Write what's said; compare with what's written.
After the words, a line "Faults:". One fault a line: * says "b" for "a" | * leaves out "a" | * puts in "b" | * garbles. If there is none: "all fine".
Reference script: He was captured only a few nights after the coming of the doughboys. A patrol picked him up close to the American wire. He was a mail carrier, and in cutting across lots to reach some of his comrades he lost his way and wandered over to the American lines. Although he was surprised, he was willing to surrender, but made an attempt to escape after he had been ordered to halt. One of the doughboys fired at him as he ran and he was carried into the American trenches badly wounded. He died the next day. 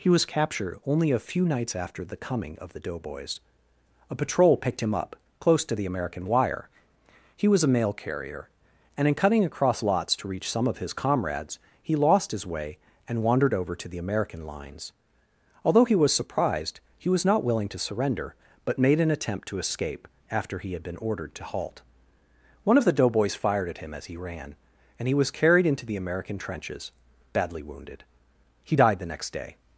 He was captured only a few nights after the coming of the doughboys. A patrol picked him up close to the American wire. He was a mail carrier, and in cutting across lots to reach some of his comrades he lost his way and wandered over to the American lines. Although he was surprised, he was not willing to surrender, but made an attempt to escape after he had been ordered to halt. One of the doughboys fired at him as he ran and he was carried into the American trenches badly wounded. He died the next day.
Faults:
* puts in "not"